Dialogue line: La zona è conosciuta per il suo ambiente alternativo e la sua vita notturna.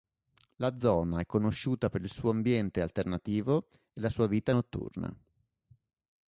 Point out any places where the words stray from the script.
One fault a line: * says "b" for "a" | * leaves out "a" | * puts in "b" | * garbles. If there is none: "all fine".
all fine